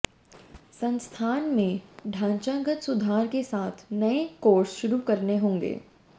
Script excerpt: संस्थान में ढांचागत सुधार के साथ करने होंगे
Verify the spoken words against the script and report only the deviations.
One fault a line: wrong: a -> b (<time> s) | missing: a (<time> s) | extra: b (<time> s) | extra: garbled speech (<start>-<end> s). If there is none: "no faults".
extra: नए कोर्स शुरू (3.9 s)